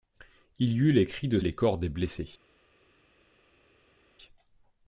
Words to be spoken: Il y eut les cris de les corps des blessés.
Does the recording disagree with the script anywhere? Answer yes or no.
no